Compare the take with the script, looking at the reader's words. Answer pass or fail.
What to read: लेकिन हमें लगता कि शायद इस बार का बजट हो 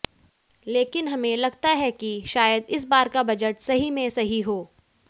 fail